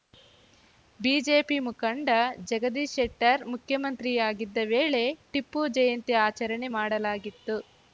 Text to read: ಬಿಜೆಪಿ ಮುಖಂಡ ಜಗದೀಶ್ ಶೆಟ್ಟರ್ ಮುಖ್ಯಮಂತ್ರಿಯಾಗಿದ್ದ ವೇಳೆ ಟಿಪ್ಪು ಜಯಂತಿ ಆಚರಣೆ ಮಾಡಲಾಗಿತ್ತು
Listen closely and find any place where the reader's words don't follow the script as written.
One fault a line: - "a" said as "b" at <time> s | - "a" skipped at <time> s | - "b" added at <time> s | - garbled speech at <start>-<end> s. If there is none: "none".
none